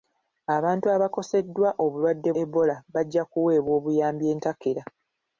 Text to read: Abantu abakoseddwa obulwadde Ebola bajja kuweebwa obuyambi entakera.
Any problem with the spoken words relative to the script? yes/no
no